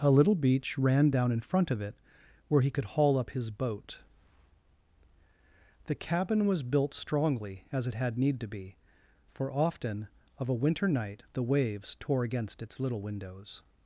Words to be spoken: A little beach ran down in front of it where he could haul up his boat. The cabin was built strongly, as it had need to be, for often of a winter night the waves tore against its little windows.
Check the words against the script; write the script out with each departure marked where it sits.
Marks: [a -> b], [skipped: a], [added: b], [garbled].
A little beach ran down in front of it where he could haul up his boat. The cabin was built strongly, as it had need to be, for often of a winter night the waves tore against its little windows.